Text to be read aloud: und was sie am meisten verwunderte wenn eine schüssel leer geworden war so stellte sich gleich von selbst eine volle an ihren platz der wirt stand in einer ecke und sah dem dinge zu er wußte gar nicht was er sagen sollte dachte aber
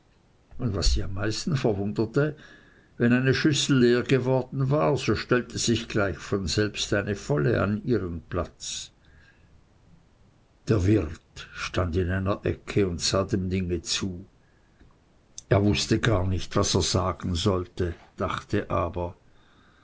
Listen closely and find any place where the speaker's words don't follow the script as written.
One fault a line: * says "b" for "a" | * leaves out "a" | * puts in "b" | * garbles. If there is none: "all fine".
all fine